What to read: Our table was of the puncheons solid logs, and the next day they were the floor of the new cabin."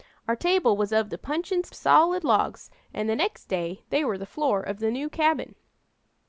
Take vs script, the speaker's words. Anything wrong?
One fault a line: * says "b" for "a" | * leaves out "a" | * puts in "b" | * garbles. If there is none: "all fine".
all fine